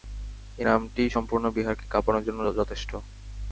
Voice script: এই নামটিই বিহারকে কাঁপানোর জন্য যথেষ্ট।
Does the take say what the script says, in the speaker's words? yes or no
no